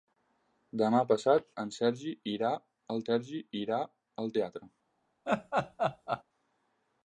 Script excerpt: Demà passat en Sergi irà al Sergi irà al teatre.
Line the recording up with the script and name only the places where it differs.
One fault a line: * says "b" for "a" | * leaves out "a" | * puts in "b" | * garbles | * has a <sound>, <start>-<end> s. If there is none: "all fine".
* has a laugh, 5.3-6.2 s